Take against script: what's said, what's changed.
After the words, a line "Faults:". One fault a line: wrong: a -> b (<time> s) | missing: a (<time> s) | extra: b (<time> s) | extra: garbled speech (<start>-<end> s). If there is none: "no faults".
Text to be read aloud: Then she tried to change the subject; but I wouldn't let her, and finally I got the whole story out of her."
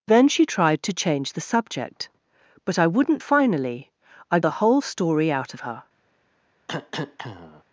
Then she tried to change the subject; but I wouldn't finally I the whole story out her."
Faults:
missing: let her and (3.2 s)
missing: got (4.4 s)
missing: of (5.5 s)